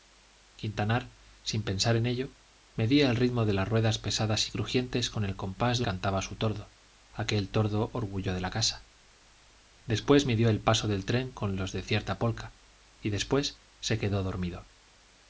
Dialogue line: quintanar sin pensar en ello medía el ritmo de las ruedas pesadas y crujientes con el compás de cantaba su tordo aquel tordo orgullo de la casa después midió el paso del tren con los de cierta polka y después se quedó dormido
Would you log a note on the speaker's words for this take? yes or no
no